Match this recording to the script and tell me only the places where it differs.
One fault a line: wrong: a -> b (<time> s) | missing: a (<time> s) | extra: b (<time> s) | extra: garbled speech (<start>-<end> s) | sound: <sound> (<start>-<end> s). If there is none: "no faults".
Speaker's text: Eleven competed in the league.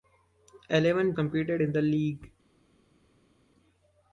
no faults